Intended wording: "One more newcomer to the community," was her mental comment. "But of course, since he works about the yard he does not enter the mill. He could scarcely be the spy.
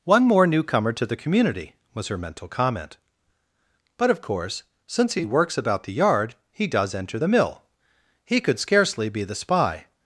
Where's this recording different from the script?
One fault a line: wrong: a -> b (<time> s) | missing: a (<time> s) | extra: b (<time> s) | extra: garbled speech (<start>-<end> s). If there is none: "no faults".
missing: not (6.9 s)